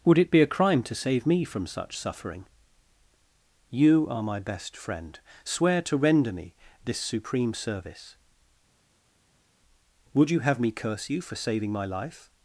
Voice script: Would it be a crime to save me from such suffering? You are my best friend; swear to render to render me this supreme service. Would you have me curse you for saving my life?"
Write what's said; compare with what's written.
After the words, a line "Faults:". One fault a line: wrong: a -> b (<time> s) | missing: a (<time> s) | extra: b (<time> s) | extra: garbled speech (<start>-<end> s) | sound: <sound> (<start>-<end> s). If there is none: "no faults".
Would it be a crime to save me from such suffering? You are my best friend; swear to render me this supreme service. Would you have me curse you for saving my life?"
Faults:
missing: to render (6.3 s)